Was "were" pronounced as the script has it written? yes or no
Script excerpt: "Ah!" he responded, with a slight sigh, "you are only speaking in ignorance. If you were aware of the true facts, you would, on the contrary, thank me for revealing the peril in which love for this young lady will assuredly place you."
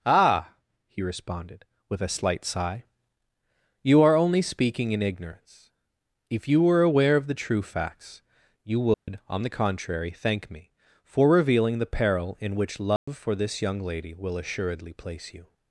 yes